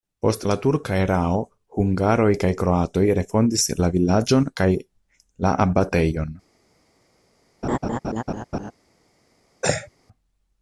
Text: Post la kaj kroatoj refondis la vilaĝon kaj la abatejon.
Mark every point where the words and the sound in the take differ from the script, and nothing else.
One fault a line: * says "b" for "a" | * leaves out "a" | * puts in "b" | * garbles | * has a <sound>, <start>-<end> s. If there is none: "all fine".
* puts in "turka erao hungaroj"
* has a laugh, 7.6-8.7 s
* has a throat clearing, 9.6-9.9 s